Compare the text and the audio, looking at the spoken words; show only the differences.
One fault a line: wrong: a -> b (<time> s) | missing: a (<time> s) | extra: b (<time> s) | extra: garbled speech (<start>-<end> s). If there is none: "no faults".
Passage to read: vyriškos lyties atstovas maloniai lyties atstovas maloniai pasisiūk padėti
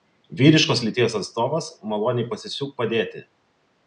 missing: lyties atstovas maloniai (2.3 s)